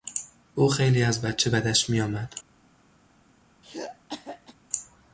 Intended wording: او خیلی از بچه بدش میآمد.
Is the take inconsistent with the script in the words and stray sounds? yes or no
yes